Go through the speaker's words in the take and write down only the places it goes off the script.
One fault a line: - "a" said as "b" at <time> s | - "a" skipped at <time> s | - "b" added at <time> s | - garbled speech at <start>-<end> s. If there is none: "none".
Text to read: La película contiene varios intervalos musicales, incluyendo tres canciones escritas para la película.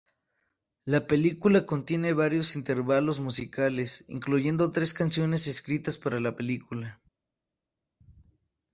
none